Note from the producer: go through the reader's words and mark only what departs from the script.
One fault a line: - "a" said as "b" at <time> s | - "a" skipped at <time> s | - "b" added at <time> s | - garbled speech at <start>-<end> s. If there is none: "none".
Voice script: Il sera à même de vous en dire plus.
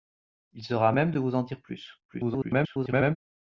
- garbled speech at 2.1-3.2 s